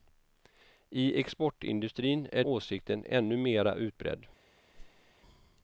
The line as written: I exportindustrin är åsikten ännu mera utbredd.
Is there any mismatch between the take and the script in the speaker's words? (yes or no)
no